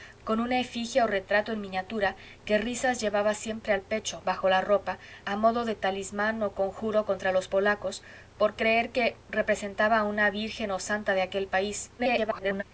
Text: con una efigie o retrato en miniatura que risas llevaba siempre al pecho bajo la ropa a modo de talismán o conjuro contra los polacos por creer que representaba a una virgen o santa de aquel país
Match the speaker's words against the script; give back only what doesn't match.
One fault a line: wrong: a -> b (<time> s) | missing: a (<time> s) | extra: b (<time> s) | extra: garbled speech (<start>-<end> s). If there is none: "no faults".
extra: garbled speech (12.0-12.6 s)